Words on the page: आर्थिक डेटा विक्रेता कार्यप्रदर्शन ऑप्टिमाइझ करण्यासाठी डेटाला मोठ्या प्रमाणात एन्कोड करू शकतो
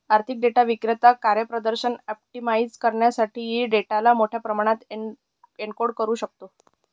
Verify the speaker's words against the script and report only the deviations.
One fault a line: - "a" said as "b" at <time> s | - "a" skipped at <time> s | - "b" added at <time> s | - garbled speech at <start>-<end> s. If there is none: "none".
none